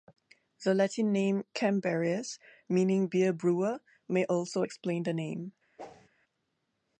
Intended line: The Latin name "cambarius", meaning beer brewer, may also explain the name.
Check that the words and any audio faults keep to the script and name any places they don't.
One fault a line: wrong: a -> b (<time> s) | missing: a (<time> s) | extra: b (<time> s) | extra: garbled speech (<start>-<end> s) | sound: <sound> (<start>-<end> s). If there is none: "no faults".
sound: whoosh (5.8-6.1 s)